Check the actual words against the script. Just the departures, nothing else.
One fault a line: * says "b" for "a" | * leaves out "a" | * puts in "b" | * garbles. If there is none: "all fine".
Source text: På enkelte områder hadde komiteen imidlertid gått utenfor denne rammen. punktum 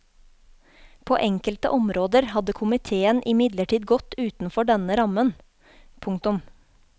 all fine